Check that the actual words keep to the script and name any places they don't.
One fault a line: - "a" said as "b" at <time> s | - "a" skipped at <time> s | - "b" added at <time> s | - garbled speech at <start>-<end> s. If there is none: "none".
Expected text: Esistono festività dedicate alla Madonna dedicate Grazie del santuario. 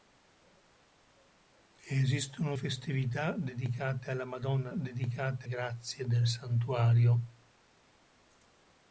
none